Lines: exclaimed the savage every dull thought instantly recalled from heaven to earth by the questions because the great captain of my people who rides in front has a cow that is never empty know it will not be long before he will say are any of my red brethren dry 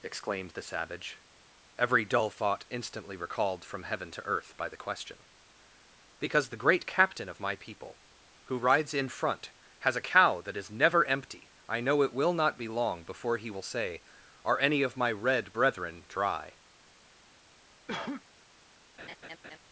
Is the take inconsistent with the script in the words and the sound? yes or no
yes